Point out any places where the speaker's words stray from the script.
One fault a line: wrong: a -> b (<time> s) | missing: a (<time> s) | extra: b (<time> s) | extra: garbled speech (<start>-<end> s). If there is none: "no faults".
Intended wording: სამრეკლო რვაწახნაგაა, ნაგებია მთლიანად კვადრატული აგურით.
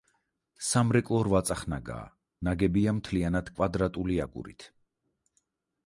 no faults